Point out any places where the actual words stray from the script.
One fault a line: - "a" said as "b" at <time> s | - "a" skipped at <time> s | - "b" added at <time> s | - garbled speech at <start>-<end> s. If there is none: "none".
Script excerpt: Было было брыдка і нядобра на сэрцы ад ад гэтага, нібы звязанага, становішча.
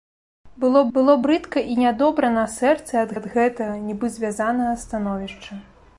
none